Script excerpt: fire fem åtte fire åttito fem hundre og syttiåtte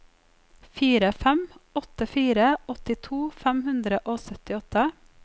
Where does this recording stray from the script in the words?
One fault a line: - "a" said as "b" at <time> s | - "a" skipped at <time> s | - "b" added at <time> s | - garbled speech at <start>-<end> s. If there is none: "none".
none